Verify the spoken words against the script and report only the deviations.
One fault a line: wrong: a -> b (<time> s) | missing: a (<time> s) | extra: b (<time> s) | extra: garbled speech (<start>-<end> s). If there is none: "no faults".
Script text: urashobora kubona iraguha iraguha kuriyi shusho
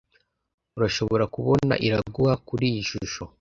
missing: iraguha (2.3 s)